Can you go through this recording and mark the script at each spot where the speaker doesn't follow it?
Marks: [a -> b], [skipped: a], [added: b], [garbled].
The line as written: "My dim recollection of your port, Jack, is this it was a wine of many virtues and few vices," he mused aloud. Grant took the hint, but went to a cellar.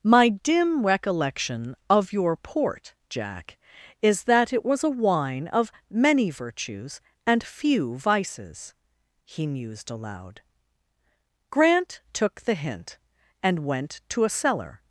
"My dim recollection of your port, Jack, is [this -> that] it was a wine of many virtues and few vices," he mused aloud. Grant took the hint, [but -> and] went to a cellar.